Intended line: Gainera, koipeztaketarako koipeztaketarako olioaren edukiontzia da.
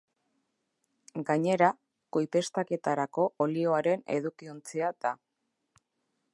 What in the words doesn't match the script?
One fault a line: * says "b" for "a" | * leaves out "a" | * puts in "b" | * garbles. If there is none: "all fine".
* leaves out "koipeztaketarako"